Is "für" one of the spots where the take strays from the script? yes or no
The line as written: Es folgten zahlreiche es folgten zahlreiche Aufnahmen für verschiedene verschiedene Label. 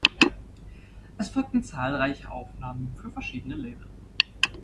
no